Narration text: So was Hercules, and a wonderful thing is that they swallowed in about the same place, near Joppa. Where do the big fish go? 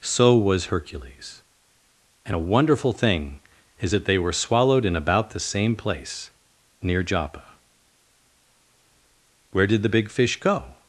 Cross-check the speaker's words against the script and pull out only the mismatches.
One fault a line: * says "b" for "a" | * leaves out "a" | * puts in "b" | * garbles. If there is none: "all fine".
* puts in "were"
* says "did" for "do"